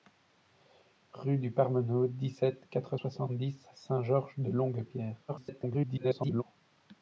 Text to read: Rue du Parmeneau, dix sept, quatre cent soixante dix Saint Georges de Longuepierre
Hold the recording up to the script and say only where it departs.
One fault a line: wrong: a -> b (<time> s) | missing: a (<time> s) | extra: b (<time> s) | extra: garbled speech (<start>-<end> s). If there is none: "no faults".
missing: cent (3.0 s)
extra: garbled speech (5.3-6.4 s)